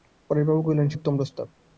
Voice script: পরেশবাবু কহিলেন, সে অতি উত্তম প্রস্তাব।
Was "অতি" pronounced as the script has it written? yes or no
no